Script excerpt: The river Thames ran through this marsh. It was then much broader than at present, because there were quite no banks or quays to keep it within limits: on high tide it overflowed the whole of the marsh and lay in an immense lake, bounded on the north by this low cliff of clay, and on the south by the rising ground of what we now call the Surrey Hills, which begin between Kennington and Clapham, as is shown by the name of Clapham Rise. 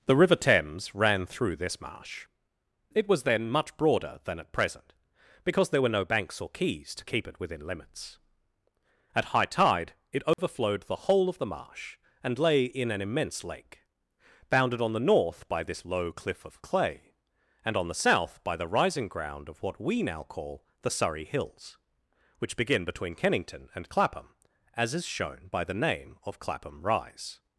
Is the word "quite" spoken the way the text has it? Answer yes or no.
no